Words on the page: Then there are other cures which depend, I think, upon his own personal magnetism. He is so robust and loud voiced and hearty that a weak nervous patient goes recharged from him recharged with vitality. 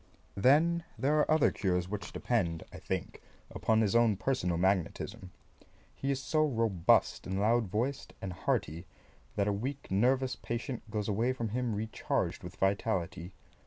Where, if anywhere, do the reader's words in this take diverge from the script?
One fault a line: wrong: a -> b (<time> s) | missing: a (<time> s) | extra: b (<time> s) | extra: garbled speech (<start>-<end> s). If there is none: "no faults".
wrong: recharged -> away (11.1 s)